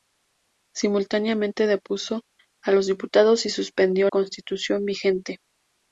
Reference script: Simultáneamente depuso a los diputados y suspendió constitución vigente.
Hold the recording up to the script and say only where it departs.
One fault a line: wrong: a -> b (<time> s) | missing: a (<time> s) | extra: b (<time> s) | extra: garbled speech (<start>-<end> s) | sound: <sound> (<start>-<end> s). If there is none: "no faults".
no faults